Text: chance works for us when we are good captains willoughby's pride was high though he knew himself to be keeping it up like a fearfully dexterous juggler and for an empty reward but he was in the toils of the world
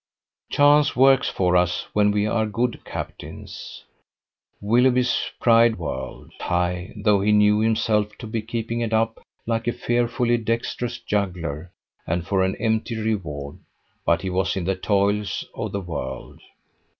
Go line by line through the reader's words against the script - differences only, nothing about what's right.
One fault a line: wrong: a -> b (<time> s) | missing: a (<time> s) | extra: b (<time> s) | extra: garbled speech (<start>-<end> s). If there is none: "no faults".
wrong: was -> world (5.7 s)